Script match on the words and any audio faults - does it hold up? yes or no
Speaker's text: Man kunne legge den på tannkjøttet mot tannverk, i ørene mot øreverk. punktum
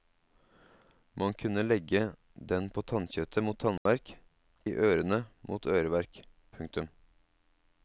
no